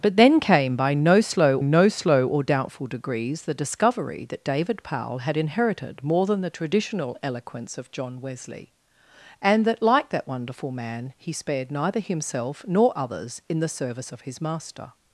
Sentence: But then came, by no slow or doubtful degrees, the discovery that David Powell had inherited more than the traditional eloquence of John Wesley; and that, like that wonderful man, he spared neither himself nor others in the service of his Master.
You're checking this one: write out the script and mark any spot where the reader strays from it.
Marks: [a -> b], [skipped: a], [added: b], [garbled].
But then came, by no slow [added: no slow] or doubtful degrees, the discovery that David Powell had inherited more than the traditional eloquence of John Wesley; and that, like that wonderful man, he spared neither himself nor others in the service of his Master.